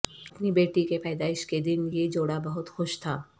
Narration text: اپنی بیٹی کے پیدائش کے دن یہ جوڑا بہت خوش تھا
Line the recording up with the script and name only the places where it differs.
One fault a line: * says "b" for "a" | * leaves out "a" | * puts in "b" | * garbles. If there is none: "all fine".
all fine